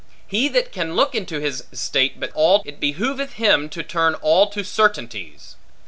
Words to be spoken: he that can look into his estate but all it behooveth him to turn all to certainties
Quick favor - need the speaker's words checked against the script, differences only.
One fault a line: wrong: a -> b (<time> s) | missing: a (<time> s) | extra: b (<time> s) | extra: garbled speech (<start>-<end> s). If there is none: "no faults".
no faults